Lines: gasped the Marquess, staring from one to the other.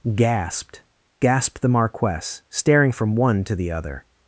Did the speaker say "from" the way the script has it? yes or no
yes